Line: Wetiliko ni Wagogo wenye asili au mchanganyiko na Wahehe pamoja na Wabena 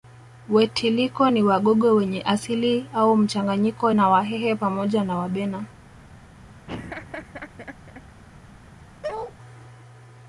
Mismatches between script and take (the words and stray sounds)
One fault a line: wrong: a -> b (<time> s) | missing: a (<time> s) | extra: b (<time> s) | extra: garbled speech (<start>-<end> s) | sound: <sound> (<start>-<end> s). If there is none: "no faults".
sound: laugh (6.7-8.0 s)
sound: bark (9.0-9.3 s)